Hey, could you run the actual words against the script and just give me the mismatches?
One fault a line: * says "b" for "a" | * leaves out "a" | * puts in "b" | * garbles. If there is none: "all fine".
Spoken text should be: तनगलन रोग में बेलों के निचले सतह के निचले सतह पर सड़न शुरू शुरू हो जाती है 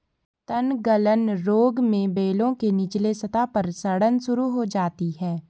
* leaves out "के निचले सतह"
* leaves out "शुरू"